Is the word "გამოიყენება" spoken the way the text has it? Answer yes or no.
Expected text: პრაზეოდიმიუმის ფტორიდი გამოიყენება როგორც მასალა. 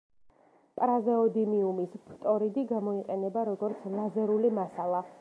yes